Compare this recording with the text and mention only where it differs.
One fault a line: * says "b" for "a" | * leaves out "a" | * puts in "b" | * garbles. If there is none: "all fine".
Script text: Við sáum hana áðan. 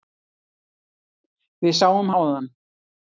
* leaves out "hana"